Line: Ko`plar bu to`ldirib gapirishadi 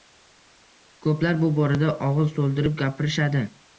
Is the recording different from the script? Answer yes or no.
yes